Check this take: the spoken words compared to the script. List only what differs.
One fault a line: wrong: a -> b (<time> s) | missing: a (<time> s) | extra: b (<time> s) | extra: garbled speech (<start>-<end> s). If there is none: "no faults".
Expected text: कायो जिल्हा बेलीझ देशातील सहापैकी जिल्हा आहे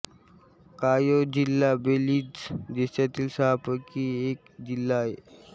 extra: एक (4.3 s)